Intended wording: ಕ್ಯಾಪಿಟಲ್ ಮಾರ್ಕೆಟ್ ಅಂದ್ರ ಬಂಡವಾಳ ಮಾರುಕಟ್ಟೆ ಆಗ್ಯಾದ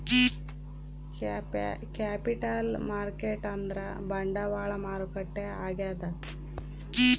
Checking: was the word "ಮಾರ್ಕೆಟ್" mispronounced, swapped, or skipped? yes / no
no